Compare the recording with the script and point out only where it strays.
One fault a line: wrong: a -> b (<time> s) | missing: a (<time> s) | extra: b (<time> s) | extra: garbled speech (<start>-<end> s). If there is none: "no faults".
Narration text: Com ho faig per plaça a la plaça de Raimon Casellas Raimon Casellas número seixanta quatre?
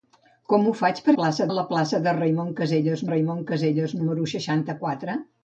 no faults